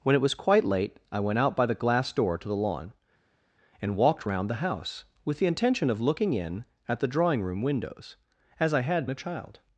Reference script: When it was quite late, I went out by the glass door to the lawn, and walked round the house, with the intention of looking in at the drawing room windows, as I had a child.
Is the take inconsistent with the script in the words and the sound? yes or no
no